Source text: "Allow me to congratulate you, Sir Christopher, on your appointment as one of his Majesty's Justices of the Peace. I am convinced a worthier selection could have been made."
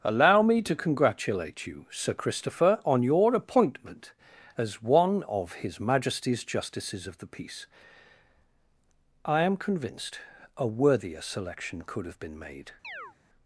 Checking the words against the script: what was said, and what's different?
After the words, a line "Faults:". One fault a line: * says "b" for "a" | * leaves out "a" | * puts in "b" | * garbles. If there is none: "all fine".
"Allow me to congratulate you, Sir Christopher, on your appointment as one of his Majesty's Justices of the Peace. I am convinced a worthier selection could have been made."
Faults:
all fine